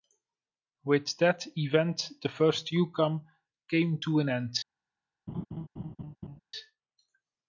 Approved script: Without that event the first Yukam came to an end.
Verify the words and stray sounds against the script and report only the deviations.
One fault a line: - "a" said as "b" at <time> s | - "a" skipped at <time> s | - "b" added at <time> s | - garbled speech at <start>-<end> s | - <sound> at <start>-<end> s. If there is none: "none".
- "Without" said as "With" at 0.8 s
- laugh at 5.3-6.4 s